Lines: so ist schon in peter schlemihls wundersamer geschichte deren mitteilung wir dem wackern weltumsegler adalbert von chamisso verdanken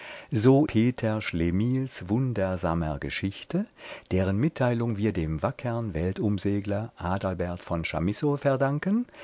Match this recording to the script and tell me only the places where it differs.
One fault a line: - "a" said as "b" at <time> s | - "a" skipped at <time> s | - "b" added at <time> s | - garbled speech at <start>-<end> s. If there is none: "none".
- "ist schon in" skipped at 0.7 s